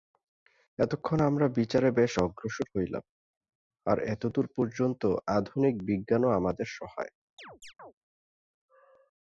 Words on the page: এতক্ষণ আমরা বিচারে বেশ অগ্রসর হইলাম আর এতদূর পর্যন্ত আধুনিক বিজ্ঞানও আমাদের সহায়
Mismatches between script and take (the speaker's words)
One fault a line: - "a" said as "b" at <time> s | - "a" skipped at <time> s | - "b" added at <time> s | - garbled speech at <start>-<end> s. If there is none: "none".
none